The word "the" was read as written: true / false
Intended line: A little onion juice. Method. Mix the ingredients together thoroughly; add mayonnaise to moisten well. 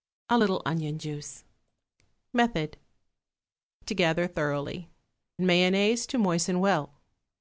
false